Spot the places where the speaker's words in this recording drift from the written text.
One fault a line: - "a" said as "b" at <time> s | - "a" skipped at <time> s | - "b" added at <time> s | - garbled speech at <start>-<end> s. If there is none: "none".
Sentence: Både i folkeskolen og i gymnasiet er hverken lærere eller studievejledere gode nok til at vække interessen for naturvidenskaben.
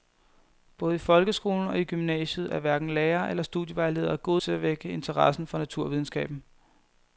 - "nok" skipped at 4.4 s